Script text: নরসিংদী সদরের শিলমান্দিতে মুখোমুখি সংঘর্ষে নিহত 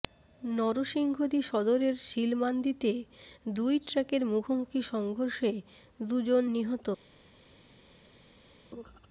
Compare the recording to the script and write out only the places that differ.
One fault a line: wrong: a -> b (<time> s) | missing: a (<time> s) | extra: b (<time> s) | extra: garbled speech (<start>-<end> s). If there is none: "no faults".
extra: দুই ট্রাকের (3.5 s)
extra: দুজন (6.0 s)